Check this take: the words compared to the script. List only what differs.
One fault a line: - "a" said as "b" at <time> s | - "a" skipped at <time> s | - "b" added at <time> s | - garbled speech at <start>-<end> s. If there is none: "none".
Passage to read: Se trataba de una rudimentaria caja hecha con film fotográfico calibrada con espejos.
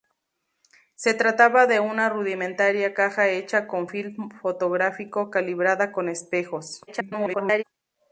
- garbled speech at 6.9-7.6 s